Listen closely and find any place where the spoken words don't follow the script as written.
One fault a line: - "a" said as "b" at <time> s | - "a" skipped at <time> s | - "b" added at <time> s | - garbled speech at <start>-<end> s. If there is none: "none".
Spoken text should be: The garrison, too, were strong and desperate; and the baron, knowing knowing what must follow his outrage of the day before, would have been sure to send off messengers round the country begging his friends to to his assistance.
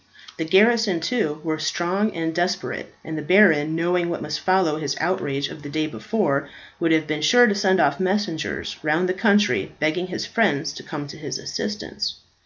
- "knowing" skipped at 4.1 s
- "come" added at 10.8 s